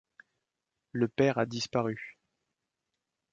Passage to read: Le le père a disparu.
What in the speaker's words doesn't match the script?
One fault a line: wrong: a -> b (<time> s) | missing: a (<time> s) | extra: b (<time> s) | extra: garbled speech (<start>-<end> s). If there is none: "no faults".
missing: le (1.1 s)